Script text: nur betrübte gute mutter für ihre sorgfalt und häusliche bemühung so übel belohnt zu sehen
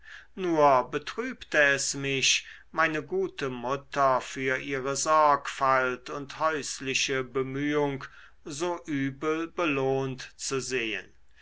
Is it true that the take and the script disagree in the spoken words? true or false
true